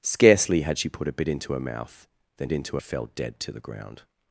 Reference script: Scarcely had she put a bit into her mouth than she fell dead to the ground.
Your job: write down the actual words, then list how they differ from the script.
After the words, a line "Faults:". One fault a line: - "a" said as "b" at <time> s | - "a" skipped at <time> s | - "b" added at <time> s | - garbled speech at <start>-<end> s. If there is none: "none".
Scarcely had she put a bit into her mouth than into fell dead to the ground.
Faults:
- "she" said as "into" at 2.5 s